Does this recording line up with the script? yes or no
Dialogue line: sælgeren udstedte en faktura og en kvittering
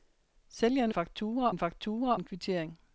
no